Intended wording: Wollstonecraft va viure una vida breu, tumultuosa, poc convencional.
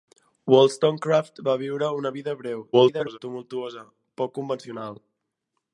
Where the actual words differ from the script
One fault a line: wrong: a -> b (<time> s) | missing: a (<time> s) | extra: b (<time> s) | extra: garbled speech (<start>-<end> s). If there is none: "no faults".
extra: garbled speech (2.7-3.2 s)